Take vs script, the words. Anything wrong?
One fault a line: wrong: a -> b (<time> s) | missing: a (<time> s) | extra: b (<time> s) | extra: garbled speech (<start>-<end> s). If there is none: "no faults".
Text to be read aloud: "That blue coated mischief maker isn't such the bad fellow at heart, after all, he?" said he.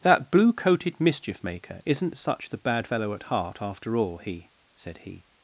no faults